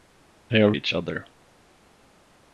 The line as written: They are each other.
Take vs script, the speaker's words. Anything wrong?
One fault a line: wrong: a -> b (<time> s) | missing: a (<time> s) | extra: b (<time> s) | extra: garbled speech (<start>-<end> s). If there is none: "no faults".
no faults